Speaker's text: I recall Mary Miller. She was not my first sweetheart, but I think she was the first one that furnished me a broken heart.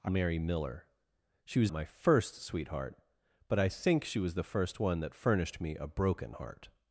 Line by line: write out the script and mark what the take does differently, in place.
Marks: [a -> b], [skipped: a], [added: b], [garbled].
I [skipped: recall] Mary Miller. She was [skipped: not] my first sweetheart, but I think she was the first one that furnished me a broken heart.